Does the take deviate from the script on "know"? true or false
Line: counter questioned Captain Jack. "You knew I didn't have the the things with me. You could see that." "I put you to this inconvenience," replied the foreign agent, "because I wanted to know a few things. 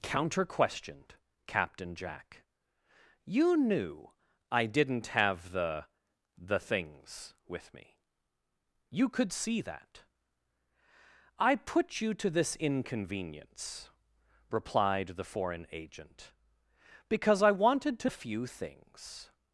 true